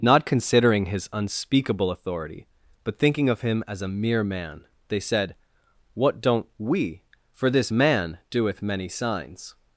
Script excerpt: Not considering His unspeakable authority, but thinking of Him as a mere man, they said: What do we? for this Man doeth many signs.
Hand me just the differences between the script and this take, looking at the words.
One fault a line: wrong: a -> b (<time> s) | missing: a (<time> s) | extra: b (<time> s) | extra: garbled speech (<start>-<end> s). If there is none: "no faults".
wrong: do -> don't (6.2 s)